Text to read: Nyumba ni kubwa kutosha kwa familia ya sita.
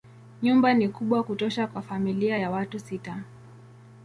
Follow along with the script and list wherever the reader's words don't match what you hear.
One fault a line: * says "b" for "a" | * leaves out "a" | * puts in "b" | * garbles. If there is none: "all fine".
* puts in "watu"